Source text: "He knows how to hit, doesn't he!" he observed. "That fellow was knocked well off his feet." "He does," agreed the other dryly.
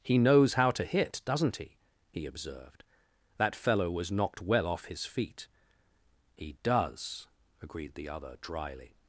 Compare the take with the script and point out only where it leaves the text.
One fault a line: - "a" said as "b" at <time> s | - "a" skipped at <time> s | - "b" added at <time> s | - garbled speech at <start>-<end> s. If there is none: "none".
none